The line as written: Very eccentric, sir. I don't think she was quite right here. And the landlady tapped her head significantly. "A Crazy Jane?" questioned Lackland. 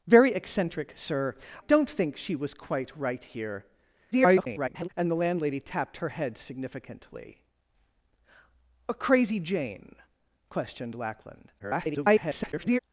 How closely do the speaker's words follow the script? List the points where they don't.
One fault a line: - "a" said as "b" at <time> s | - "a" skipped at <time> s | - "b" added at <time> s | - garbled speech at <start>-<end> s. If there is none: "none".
- "I" skipped at 1.4 s
- garbled speech at 4.1-4.9 s
- garbled speech at 11.6-12.8 s